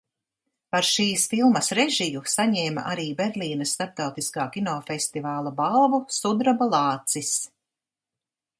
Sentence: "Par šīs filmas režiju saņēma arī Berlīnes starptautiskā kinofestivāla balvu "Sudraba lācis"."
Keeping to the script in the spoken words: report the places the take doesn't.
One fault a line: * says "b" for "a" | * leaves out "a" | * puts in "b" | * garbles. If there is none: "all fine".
all fine